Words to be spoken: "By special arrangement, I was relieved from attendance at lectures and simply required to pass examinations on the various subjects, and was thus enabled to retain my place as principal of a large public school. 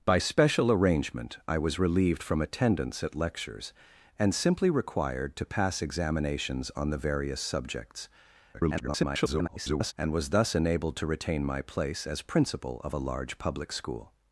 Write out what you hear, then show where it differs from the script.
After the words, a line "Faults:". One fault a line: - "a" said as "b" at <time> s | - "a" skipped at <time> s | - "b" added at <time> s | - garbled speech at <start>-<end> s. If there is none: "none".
"By special arrangement, I was relieved from attendance at lectures and simply required to pass examinations on the various subjects, [garbled] and was thus enabled to retain my place as principal of a large public school.
Faults:
- garbled speech at 8.5-9.9 s